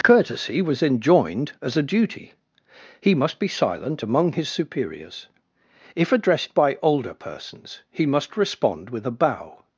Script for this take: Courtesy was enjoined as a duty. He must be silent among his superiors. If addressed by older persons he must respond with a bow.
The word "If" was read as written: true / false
true